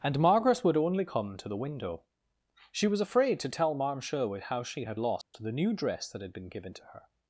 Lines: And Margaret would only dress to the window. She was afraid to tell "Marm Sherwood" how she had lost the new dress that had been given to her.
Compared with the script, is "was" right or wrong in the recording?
right